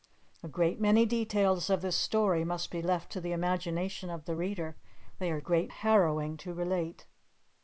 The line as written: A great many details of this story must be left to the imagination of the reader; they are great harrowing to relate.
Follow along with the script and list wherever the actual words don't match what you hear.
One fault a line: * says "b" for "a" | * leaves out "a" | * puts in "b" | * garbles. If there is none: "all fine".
all fine